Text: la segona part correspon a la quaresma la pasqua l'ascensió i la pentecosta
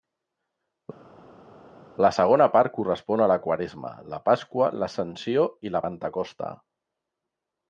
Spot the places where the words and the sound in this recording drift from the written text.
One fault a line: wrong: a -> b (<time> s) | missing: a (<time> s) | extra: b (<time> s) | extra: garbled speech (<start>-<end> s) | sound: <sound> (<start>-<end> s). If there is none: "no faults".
no faults